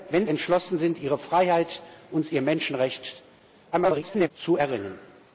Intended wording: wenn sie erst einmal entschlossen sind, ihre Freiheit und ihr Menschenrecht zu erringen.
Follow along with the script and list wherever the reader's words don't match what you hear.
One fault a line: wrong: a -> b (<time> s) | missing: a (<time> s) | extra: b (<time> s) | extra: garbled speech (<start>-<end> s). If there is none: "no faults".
missing: sie erst einmal (0.2 s)
extra: garbled speech (3.7-4.3 s)